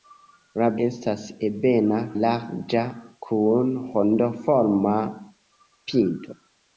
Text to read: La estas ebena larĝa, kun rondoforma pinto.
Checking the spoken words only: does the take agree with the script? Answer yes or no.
yes